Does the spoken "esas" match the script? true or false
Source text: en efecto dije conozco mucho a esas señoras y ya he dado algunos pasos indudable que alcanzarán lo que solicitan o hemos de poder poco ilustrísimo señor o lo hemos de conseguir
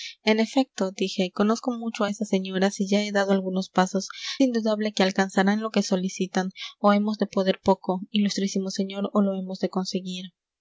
true